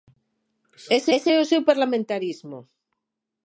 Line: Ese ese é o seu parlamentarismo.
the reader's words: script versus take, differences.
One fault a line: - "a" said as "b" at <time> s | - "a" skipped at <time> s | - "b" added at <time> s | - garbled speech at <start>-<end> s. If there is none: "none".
none